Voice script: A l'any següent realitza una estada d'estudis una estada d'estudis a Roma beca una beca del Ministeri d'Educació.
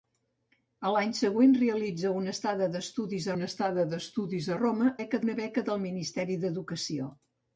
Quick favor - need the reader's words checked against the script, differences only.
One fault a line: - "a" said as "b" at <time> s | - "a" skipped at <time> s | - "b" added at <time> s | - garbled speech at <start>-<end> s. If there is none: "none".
none